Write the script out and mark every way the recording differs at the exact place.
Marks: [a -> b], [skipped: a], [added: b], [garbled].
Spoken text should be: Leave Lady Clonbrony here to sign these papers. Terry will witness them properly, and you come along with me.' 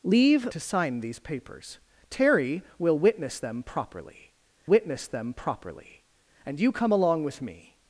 Leave [skipped: Lady Clonbrony here] to sign these papers. Terry will witness them properly, [added: witness them properly] and you come along with me.'